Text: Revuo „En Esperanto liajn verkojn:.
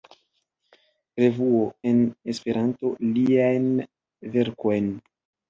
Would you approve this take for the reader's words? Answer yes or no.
yes